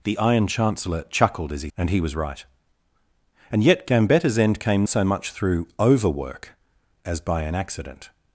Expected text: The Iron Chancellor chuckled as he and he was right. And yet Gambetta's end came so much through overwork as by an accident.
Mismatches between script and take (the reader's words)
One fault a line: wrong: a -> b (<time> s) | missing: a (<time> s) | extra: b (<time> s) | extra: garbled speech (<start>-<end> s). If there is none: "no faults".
no faults